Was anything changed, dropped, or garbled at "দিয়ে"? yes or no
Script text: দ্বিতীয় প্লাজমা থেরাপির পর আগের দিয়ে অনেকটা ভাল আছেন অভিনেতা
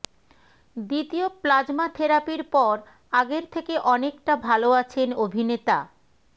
yes